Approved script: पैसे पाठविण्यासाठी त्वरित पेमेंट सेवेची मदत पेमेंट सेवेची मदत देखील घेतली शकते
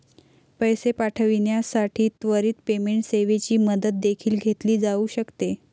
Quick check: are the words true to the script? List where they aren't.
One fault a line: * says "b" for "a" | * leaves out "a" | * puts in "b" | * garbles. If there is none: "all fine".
* leaves out "पेमेंट सेवेची मदत"
* puts in "जाऊ"